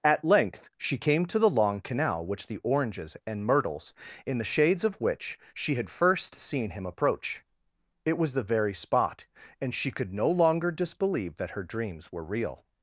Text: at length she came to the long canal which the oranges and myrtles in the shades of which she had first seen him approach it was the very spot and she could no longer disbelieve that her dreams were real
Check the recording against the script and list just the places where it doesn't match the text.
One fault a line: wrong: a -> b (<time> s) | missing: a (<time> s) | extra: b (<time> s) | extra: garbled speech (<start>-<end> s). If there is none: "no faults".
no faults